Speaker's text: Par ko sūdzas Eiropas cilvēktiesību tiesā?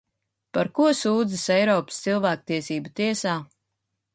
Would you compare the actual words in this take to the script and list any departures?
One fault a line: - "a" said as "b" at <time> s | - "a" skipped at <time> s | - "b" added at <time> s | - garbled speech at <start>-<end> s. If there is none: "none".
none